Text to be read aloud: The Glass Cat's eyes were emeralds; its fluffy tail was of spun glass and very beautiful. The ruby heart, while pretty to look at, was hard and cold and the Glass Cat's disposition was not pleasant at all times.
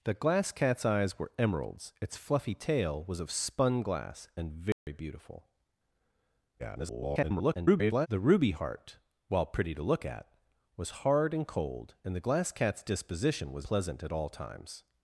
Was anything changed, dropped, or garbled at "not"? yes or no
yes